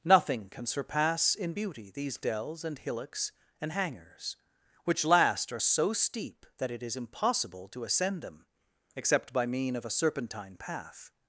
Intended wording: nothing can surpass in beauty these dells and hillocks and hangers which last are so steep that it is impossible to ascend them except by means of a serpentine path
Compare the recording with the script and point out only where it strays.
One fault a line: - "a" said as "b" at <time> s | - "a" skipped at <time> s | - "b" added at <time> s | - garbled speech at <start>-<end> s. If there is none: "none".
- "means" said as "mean" at 9.5 s